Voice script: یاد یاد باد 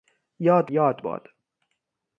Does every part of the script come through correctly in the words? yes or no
yes